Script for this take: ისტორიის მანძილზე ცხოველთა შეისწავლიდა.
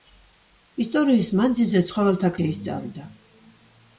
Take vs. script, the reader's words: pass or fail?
pass